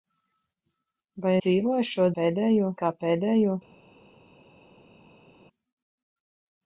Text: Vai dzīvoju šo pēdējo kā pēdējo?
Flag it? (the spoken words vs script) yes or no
no